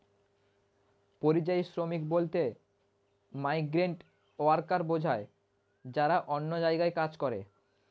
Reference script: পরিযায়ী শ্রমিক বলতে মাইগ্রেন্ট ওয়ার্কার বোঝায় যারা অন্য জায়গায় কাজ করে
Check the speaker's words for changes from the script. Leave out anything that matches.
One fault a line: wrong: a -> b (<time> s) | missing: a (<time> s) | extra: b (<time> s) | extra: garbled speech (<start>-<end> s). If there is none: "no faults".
no faults